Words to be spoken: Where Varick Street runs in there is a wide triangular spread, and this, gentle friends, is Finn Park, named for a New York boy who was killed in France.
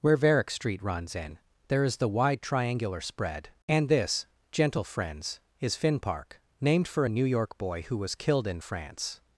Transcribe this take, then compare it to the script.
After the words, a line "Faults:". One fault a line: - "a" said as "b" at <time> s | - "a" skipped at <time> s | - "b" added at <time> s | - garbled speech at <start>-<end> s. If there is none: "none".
Where Varick Street runs in there is the wide triangular spread, and this, gentle friends, is Finn Park, named for a New York boy who was killed in France.
Faults:
- "a" said as "the" at 2.0 s